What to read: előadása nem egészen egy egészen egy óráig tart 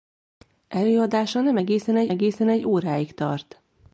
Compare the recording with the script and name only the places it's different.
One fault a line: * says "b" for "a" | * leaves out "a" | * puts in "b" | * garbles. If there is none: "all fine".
all fine